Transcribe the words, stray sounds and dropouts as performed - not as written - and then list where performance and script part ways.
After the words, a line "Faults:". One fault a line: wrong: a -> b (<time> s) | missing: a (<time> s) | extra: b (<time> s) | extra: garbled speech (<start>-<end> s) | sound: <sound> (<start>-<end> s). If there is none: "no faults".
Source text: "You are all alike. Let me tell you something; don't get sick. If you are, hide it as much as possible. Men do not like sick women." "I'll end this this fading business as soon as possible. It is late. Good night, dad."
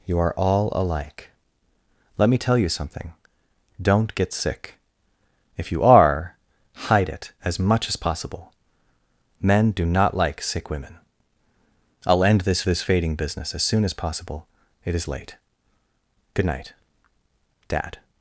"You are all alike. Let me tell you something; don't get sick. If you are, hide it as much as possible. Men do not like sick women." "I'll end this this fading business as soon as possible. It is late. Good night, dad."
Faults:
no faults